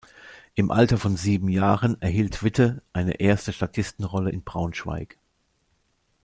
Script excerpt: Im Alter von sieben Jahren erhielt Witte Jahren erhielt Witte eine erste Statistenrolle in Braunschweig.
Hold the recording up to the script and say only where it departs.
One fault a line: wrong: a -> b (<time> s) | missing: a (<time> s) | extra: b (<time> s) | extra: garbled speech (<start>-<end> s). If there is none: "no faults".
missing: Jahren erhielt Witte (2.8 s)